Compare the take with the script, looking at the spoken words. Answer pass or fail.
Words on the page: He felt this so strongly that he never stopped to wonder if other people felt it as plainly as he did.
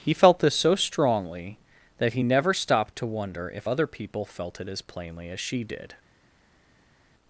fail